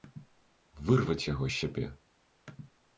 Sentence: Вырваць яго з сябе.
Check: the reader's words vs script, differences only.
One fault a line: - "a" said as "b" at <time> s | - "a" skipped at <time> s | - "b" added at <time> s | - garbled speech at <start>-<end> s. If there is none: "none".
none